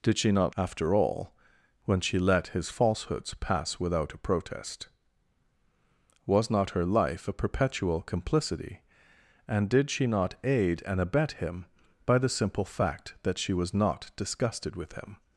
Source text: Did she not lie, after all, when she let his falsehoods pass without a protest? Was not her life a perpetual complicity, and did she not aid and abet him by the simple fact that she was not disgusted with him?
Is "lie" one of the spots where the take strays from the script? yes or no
yes